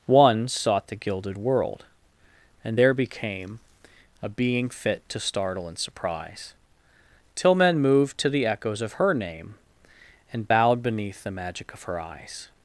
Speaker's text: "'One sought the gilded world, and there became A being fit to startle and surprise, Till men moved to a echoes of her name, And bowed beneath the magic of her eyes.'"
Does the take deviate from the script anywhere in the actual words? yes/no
yes